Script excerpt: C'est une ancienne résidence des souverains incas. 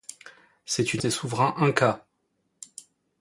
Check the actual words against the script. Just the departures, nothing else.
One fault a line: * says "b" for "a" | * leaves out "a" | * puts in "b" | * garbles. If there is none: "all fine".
* leaves out "ancienne résidence"